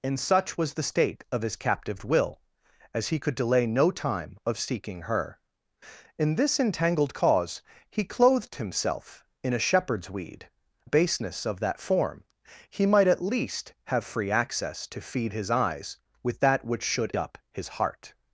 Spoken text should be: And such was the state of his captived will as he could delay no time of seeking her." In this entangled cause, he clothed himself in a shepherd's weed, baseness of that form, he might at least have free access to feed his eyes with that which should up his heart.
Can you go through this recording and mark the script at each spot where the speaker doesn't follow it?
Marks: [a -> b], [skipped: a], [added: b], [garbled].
And such was the state of his captived will as he could delay no time of seeking her." In this entangled cause, he clothed himself in a shepherd's weed, baseness of that form, he might at least have free access to feed his eyes with that which should up his heart.